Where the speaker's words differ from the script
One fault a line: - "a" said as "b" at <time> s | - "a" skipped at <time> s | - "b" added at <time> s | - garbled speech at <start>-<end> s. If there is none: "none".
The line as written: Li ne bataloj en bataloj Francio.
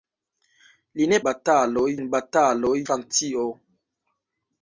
none